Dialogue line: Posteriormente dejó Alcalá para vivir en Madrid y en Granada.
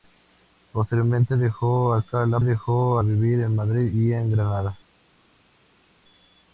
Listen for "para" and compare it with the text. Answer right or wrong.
wrong